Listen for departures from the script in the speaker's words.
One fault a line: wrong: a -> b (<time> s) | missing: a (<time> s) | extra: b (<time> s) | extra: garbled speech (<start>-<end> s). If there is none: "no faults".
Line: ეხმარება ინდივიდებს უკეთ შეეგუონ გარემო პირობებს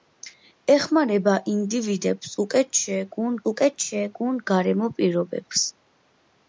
extra: უკეთ შეეგუონ (3.5 s)